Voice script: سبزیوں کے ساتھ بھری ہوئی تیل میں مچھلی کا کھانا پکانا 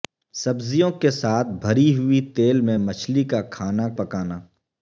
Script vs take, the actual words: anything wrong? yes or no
no